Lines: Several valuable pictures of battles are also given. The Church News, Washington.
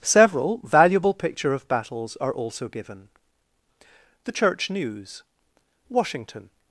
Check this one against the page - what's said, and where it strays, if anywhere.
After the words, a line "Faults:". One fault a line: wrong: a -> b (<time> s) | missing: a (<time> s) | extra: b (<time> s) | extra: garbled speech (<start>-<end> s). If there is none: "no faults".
Several valuable picture of battles are also given. The Church News, Washington.
Faults:
wrong: pictures -> picture (1.1 s)